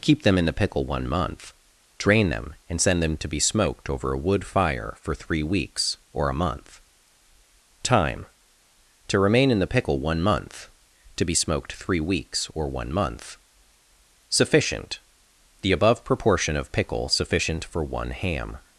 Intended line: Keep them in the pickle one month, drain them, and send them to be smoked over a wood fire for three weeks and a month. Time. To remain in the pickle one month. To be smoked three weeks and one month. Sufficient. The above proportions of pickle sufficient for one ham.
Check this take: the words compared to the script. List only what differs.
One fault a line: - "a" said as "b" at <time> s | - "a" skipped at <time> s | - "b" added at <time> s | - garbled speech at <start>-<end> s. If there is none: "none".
- "and" said as "or" at 6.1 s
- "and" said as "or" at 12.5 s
- "proportions" said as "proportion" at 16.0 s